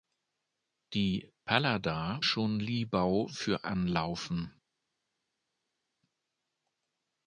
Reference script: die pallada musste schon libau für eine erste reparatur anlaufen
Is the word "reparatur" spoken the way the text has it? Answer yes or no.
no